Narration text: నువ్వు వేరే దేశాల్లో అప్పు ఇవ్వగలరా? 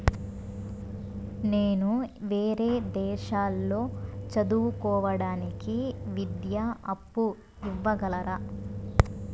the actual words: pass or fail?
fail